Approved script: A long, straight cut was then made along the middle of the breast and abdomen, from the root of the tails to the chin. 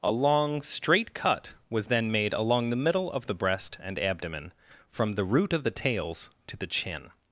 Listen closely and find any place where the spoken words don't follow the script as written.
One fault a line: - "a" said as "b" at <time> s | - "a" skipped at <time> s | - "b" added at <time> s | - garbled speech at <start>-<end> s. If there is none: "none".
none